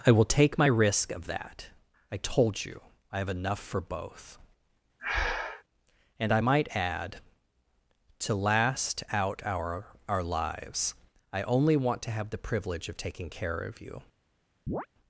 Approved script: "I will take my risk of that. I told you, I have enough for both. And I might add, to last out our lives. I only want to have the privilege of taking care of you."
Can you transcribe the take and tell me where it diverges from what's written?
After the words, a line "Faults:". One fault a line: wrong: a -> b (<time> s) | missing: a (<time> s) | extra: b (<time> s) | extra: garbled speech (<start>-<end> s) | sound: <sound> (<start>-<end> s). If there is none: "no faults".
"I will take my risk of that. I told you, I have enough for both. And I might add, to last out our our lives. I only want to have the privilege of taking care of you."
Faults:
sound: breath (5.0-5.6 s)
extra: our (10.1 s)
sound: chirp (14.7-14.9 s)